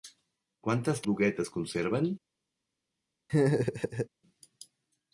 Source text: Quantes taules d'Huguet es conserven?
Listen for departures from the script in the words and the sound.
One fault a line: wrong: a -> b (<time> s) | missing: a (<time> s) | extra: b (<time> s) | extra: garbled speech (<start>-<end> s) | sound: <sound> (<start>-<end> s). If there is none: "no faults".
missing: taules (1.0 s)
sound: laugh (3.3-4.1 s)